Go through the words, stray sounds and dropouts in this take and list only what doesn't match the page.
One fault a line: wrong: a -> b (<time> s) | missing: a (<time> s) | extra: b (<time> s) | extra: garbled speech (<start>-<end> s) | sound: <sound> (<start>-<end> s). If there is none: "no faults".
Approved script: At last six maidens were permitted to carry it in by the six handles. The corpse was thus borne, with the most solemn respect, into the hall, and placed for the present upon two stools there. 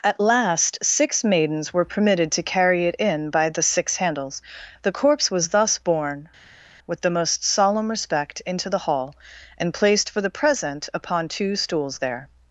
no faults